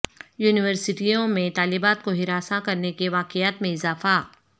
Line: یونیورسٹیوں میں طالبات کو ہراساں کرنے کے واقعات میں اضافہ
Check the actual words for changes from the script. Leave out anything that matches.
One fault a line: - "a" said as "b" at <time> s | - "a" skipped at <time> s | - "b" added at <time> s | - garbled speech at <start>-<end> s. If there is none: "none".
none